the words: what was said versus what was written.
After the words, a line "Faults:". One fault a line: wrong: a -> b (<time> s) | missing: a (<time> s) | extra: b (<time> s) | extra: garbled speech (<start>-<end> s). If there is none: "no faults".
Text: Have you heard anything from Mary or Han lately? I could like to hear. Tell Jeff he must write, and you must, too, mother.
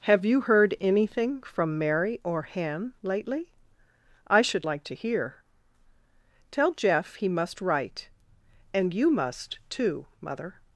Have you heard anything from Mary or Han lately? I should like to hear. Tell Jeff he must write, and you must, too, mother.
Faults:
wrong: could -> should (4.4 s)